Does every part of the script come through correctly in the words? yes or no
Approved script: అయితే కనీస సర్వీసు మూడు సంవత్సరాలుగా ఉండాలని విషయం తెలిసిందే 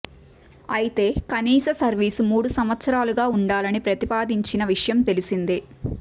no